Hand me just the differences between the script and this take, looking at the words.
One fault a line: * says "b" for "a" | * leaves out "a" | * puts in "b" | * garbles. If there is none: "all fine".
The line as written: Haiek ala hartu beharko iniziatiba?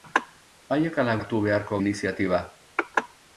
all fine